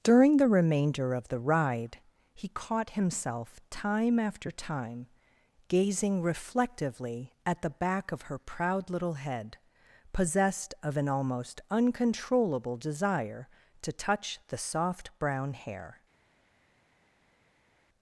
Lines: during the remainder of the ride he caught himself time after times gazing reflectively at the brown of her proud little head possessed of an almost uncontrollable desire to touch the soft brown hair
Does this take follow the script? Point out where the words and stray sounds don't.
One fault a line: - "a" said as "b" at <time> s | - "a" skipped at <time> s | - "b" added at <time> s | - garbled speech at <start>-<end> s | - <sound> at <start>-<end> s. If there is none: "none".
- "times" said as "time" at 4.5 s
- "brown" said as "back" at 7.7 s